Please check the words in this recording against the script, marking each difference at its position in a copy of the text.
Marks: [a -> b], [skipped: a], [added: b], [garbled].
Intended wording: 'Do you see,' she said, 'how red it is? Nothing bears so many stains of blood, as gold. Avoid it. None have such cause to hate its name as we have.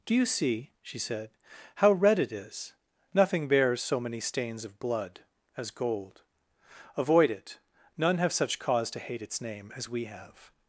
'Do you see,' she said, 'how red it is? Nothing bears so many stains of blood, as gold. Avoid it. None have such cause to hate its name as we have.